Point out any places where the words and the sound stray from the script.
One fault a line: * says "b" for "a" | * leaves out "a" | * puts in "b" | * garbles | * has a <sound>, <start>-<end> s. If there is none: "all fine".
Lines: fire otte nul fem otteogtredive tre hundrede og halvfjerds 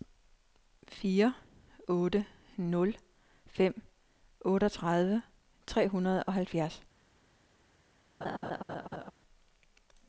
* has a laugh, 8.2-9.1 s